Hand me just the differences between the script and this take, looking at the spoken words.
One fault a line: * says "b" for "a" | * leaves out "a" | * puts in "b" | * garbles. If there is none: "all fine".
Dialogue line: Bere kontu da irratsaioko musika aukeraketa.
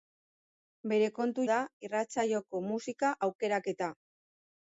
all fine